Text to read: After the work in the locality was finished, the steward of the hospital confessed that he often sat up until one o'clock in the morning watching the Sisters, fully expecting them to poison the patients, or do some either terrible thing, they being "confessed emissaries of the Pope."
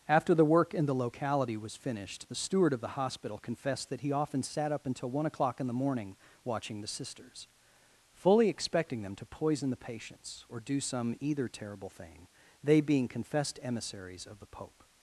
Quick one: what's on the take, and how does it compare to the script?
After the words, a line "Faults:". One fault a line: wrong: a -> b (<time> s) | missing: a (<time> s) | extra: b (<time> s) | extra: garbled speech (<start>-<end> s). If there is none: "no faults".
After the work in the locality was finished, the steward of the hospital confessed that he often sat up until one o'clock in the morning watching the Sisters, fully expecting them to poison the patients, or do some either terrible thing, they being "confessed emissaries of the Pope."
Faults:
no faults